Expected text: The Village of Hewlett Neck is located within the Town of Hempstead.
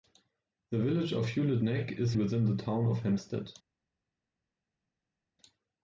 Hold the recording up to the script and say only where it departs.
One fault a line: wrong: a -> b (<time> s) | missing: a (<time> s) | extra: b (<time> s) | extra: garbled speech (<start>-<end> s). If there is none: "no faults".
missing: located (2.1 s)